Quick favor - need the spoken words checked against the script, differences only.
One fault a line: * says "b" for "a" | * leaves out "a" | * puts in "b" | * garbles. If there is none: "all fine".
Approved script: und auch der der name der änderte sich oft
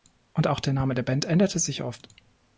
* leaves out "der"
* puts in "band"